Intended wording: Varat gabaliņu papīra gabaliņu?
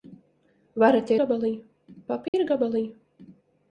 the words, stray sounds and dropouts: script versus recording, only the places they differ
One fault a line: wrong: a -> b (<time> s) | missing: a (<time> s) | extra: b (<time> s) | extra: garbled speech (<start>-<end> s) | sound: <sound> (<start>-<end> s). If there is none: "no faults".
sound: dropout (2.3-2.3 s)